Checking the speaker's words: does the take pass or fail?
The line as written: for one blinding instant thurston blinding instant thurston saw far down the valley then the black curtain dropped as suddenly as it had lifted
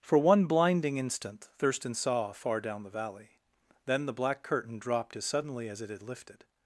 fail